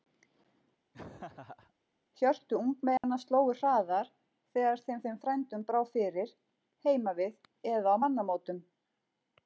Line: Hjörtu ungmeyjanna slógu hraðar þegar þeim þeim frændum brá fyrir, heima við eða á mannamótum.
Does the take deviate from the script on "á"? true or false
false